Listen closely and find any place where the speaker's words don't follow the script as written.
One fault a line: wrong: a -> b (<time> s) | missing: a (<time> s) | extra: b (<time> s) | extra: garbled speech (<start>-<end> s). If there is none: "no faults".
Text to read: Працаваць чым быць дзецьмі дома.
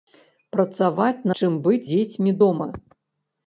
no faults